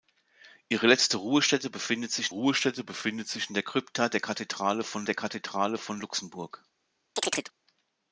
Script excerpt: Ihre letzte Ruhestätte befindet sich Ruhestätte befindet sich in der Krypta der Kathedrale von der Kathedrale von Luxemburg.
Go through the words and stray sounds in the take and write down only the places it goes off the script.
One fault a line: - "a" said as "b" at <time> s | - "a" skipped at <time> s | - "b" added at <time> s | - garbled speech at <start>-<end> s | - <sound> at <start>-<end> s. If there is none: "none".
- chirp at 7.2-7.5 s